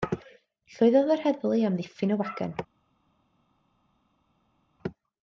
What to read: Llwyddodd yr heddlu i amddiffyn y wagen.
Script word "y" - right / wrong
right